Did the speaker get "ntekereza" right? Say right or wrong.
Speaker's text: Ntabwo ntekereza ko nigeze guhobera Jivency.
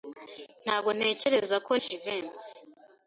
right